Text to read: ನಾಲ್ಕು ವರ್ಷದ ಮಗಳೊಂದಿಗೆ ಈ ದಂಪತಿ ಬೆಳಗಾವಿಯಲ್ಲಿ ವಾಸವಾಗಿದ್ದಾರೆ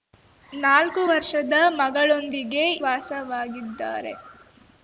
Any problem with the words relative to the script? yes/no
yes